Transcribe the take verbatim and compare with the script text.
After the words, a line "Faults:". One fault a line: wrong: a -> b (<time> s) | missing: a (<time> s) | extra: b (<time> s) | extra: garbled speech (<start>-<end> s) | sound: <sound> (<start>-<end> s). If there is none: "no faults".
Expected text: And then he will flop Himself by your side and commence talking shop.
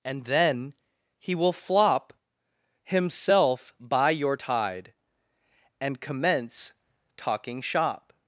And then he will flop Himself by your tide and commence talking shop.
Faults:
wrong: side -> tide (4.3 s)